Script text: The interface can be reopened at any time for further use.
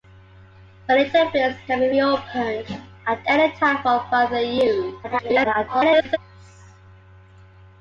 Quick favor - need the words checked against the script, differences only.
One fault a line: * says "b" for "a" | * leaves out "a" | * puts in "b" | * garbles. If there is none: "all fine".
* garbles